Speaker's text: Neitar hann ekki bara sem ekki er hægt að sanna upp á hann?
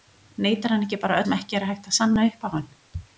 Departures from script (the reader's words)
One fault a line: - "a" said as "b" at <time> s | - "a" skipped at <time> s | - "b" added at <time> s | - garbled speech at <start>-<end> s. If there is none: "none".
none